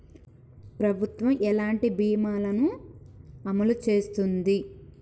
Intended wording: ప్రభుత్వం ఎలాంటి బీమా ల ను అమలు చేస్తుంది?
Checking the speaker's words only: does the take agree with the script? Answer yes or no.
yes